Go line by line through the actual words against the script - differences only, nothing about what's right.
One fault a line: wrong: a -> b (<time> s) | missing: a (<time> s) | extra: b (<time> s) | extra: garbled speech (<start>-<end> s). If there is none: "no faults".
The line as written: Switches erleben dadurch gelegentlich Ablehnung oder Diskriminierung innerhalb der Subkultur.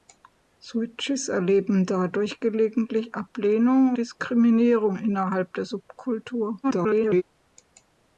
missing: oder (4.0 s)
extra: garbled speech (6.6-7.2 s)